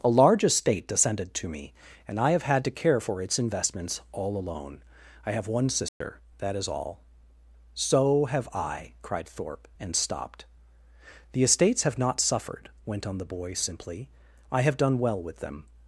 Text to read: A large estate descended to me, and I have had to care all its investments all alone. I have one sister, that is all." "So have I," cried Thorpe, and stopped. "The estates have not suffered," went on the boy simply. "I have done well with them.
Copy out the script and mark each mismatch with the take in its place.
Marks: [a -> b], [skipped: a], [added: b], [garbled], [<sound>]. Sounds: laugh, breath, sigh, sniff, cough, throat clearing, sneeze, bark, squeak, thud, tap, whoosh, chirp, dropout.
A large estate descended to me, and I have had to care [all -> for] its investments all alone. I have one sister, [dropout] that is all." "So have I," cried Thorpe, and stopped. "The estates have not suffered," went on the boy simply. "I have done well with them.